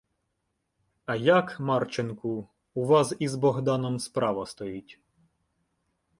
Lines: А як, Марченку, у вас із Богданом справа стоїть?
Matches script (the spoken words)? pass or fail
pass